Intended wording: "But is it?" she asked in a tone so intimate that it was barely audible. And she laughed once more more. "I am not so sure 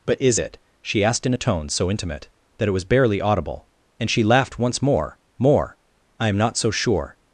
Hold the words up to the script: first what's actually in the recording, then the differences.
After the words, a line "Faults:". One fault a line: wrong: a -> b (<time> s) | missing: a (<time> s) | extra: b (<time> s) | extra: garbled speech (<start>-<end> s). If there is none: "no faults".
"But is it?" she asked in a tone so intimate that it was barely audible. And she laughed once more more. "I am not so sure
Faults:
no faults